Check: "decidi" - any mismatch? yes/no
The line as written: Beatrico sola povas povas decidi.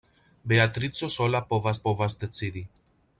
no